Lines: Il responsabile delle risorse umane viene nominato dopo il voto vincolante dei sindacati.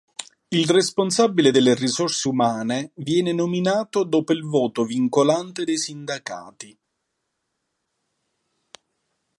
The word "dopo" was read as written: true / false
true